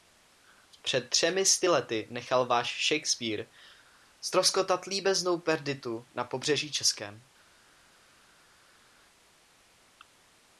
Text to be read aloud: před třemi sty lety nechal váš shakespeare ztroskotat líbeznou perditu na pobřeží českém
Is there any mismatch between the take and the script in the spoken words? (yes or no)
no